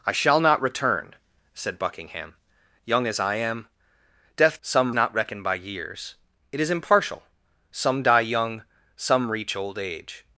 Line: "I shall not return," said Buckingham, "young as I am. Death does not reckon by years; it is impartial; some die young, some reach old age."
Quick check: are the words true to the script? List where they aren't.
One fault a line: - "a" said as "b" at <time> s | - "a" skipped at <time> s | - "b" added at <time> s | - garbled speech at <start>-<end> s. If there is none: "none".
- "does" said as "some" at 4.6 s